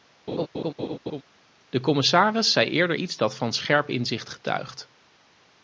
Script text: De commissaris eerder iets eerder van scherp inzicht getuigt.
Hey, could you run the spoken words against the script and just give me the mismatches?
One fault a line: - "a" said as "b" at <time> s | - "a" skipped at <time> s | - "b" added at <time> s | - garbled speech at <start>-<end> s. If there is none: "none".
- "zei" added at 2.5 s
- "eerder" said as "dat" at 3.2 s